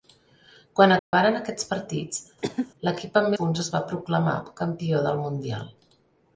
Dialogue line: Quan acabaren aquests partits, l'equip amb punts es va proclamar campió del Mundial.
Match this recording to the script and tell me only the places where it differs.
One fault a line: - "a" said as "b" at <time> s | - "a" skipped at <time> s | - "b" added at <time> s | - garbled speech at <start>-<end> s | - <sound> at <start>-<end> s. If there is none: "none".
- dropout at 1.0-1.1 s
- cough at 2.4-2.7 s